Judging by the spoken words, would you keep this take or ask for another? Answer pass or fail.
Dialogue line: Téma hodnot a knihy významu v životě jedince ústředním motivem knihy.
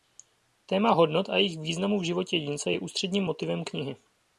fail